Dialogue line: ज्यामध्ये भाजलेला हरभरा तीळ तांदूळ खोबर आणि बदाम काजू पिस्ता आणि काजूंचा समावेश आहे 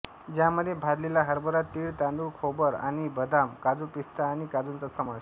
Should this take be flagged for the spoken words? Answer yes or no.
no